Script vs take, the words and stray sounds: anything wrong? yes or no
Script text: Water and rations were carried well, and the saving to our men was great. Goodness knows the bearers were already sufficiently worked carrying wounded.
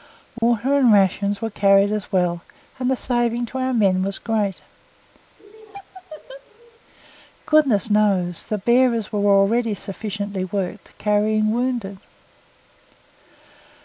yes